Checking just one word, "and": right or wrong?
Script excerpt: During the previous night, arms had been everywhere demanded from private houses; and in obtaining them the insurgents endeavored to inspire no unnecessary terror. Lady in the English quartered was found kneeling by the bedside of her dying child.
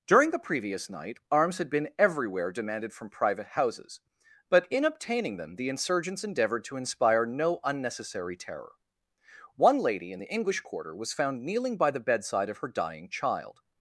wrong